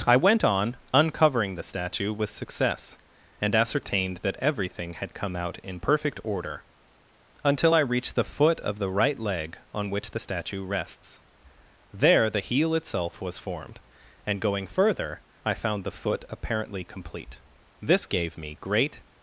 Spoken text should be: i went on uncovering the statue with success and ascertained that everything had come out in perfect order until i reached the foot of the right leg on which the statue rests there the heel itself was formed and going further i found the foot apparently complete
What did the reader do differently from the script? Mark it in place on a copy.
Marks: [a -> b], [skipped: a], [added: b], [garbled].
i went on uncovering the statue with success and ascertained that everything had come out in perfect order until i reached the foot of the right leg on which the statue rests there the heel itself was formed and going further i found the foot apparently complete [added: this gave me great]